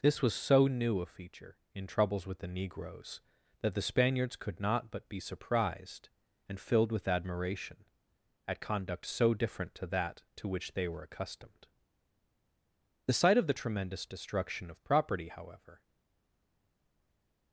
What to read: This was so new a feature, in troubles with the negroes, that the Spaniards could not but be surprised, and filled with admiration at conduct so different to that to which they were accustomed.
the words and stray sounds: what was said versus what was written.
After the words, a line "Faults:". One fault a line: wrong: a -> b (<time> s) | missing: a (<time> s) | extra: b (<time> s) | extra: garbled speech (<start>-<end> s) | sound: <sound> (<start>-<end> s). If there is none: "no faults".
This was so new a feature, in troubles with the negroes, that the Spaniards could not but be surprised, and filled with admiration at conduct so different to that to which they were accustomed. The sight of the tremendous destruction of property, however
Faults:
extra: The sight of the tremendous destruction of property however (13.1 s)